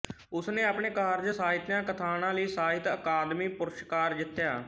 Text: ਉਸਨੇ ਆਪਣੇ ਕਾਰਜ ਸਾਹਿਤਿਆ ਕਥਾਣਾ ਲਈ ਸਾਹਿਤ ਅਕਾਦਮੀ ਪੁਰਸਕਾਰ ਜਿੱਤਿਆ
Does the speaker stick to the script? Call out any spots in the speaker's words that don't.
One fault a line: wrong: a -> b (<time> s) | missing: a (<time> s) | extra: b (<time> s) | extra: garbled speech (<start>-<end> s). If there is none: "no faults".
no faults